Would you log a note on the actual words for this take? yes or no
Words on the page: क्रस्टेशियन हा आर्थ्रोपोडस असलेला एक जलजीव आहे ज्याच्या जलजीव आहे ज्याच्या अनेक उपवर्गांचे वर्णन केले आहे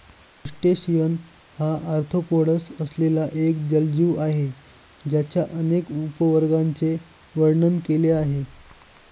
yes